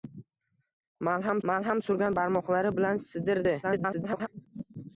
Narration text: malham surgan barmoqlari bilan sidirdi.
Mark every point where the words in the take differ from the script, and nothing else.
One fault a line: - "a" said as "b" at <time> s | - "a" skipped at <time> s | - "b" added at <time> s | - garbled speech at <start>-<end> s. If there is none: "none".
- "malham" added at 1.5 s
- garbled speech at 3.6-4.3 s